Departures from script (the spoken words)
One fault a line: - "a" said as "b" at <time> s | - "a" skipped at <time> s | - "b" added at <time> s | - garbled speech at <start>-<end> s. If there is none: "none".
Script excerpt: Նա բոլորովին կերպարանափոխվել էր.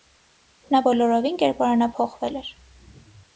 none